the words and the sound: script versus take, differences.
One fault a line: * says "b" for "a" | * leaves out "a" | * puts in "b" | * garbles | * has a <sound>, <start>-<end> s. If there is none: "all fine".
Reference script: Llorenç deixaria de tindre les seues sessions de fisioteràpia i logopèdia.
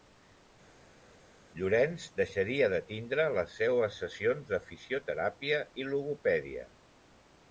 all fine